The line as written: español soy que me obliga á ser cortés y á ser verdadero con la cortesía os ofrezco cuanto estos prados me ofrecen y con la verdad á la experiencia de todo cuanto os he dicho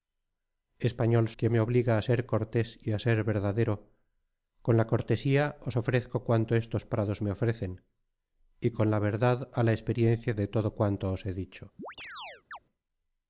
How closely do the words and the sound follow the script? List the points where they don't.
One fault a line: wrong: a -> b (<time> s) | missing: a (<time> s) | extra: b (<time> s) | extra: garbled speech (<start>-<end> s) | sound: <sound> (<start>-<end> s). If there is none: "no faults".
missing: soy (1.3 s)
sound: chirp (11.8-12.6 s)